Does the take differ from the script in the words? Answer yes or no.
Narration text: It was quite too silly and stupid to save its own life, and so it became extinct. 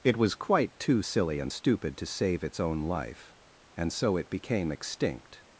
no